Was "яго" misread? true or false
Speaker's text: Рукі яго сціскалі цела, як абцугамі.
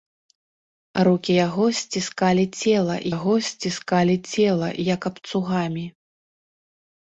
false